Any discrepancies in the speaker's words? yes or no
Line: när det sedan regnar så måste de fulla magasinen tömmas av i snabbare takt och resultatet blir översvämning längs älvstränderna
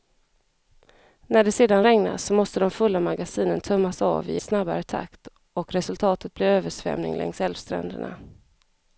no